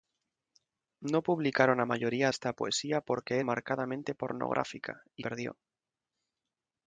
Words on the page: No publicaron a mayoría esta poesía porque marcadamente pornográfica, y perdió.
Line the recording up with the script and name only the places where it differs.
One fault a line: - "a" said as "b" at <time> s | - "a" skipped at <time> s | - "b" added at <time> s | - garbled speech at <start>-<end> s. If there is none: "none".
none